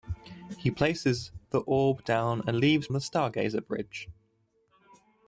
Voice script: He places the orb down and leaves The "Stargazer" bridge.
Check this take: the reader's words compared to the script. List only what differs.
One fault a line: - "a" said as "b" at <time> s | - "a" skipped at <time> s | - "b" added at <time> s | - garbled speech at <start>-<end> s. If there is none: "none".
none